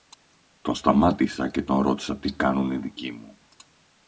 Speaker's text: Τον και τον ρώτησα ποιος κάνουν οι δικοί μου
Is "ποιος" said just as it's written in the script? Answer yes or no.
no